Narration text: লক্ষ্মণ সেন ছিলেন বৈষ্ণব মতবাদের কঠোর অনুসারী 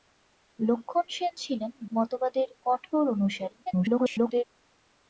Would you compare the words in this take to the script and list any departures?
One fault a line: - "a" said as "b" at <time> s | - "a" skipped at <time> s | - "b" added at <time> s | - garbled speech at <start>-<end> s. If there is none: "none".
- "বৈষ্ণব" skipped at 1.7 s
- garbled speech at 3.7-4.5 s